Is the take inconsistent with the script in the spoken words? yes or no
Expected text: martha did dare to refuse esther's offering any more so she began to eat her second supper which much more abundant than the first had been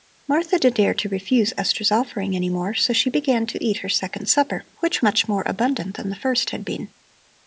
no